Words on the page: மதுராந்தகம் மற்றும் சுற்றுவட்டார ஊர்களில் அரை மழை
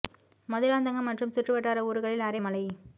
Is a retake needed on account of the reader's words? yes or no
no